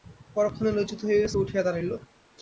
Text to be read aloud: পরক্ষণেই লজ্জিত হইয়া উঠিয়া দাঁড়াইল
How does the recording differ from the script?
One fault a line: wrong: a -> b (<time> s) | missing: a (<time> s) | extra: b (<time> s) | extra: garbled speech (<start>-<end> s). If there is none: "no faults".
no faults